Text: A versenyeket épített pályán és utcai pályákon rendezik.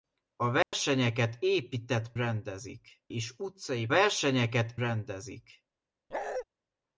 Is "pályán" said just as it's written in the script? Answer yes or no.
no